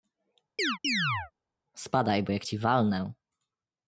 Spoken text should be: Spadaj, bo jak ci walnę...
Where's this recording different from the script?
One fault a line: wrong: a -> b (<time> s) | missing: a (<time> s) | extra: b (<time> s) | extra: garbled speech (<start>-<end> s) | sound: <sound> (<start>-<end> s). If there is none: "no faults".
sound: chirp (0.6-1.3 s)